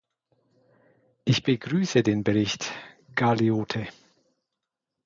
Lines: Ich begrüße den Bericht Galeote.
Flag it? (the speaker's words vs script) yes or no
no